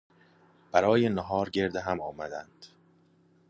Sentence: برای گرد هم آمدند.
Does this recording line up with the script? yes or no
no